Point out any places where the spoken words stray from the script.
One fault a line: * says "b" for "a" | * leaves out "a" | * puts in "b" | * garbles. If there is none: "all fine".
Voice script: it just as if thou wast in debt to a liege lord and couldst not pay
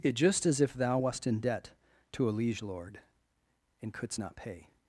all fine